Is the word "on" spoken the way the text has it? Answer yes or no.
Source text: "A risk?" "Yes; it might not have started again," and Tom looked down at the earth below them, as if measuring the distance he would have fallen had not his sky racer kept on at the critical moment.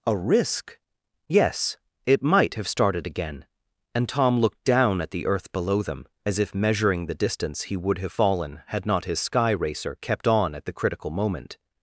yes